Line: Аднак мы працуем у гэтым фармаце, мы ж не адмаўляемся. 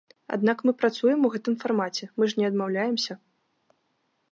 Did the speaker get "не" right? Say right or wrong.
right